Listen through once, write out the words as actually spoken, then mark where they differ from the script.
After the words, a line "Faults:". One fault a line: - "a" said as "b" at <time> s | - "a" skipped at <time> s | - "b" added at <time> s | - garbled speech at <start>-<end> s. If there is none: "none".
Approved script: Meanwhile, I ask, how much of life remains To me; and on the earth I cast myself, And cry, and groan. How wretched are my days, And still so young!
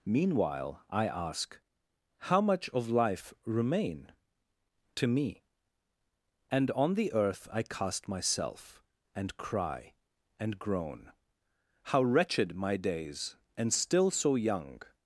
Meanwhile, I ask, how much of life remain To me; and on the earth I cast myself, And cry, and groan. How wretched my days, And still so young!
Faults:
- "remains" said as "remain" at 3.5 s
- "are" skipped at 12.6 s